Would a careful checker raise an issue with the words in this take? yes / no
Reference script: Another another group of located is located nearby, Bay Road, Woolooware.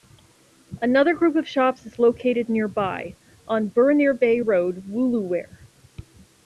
yes